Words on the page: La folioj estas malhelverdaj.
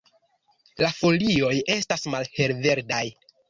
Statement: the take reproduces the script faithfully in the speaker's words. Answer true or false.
true